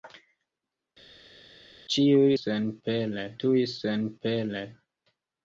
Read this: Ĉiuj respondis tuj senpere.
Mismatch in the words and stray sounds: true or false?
true